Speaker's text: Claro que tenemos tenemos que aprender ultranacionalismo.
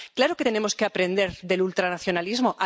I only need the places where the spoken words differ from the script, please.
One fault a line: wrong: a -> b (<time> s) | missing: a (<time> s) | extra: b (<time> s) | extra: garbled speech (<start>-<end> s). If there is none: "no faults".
missing: tenemos (0.7 s)
extra: del (1.4 s)